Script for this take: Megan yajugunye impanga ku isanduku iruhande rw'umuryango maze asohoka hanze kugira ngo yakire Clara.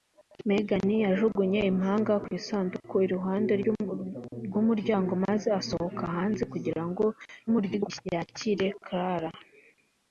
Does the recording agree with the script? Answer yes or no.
no